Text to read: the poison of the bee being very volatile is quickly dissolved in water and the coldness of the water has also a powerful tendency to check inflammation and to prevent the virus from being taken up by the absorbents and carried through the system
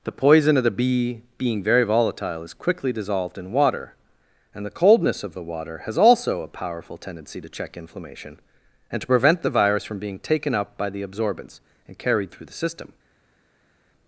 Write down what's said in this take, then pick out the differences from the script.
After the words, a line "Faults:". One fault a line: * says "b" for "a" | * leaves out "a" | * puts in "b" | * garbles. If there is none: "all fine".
the poison of the bee being very volatile is quickly dissolved in water and the coldness of the water has also a powerful tendency to check inflammation and to prevent the virus from being taken up by the absorbents and carried through the system
Faults:
all fine